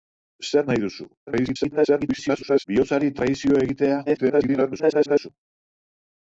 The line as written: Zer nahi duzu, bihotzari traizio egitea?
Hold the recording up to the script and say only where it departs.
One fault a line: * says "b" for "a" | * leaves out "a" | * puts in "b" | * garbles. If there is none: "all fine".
* garbles
* garbles